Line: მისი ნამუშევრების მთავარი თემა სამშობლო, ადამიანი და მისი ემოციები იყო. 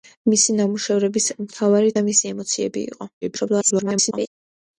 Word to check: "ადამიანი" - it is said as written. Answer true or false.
false